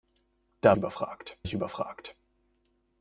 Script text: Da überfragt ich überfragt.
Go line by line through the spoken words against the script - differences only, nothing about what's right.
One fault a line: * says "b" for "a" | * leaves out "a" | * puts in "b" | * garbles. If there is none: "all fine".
all fine